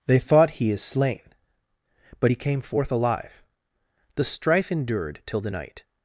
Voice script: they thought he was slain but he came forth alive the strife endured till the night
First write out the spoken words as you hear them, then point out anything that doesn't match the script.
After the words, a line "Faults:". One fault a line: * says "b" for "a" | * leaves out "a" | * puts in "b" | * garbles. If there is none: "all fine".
they thought he is slain but he came forth alive the strife endured till the night
Faults:
* says "is" for "was"